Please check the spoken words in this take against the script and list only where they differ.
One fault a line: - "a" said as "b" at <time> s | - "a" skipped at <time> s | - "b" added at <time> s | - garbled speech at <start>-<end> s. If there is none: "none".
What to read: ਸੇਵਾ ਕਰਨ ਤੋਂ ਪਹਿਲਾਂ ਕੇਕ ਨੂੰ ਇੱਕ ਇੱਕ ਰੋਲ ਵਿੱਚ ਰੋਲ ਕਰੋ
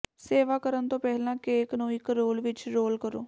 - "ਇੱਕ" skipped at 2.1 s